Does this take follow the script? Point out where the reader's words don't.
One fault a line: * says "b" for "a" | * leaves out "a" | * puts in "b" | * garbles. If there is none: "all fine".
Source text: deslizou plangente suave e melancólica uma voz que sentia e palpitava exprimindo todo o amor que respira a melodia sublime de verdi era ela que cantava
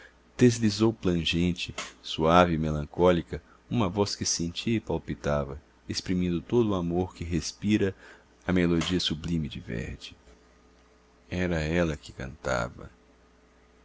all fine